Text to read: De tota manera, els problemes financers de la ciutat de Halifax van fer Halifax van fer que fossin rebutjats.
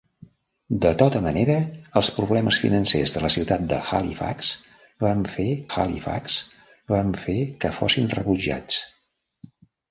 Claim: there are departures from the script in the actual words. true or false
false